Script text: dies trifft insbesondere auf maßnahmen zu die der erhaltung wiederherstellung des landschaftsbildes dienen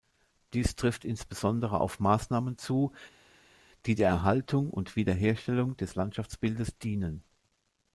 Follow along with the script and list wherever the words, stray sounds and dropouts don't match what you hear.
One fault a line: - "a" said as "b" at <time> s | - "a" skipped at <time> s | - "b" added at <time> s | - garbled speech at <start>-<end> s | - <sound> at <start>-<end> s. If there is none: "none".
- "und" added at 4.7 s